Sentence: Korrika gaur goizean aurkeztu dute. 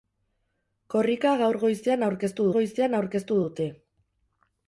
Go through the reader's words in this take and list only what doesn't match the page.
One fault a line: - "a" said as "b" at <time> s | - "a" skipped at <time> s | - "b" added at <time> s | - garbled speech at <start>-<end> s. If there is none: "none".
- "goizean aurkeztu" added at 2.6 s